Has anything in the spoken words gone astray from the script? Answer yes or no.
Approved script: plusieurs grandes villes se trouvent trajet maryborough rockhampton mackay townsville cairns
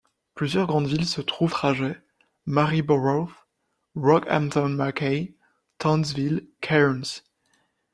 no